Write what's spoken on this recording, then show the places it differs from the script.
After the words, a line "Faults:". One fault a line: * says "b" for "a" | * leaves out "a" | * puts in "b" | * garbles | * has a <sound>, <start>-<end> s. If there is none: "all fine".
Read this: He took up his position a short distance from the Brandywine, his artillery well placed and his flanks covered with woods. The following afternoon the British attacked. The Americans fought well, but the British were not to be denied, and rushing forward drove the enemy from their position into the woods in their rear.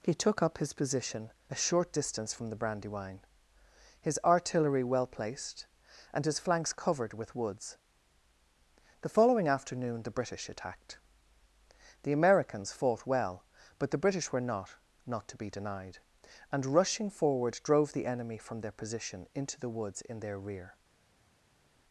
He took up his position a short distance from the Brandywine, his artillery well placed and his flanks covered with woods. The following afternoon the British attacked. The Americans fought well, but the British were not not to be denied, and rushing forward drove the enemy from their position into the woods in their rear.
Faults:
* puts in "not"